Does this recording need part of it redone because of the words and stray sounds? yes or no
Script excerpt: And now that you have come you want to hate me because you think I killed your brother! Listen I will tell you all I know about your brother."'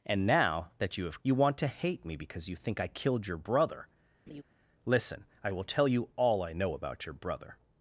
yes